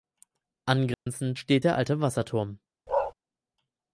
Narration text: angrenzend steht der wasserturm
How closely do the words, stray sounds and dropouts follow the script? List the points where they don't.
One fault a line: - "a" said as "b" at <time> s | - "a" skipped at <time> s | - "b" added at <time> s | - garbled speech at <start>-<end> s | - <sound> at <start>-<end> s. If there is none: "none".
- dropout at 0.9-1.1 s
- "alte" added at 1.7 s
- bark at 2.9-3.1 s